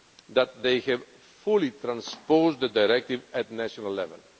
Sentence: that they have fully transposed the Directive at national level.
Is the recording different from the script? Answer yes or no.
no